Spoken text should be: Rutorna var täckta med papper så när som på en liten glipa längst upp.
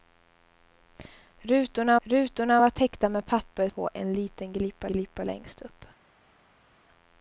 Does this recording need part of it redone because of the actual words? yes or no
yes